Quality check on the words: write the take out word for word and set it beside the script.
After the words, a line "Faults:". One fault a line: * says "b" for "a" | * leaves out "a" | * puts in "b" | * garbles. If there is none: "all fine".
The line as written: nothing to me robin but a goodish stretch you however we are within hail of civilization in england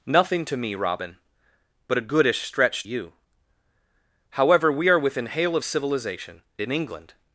nothing to me robin but a goodish stretch you however we are within hail of civilization in england
Faults:
all fine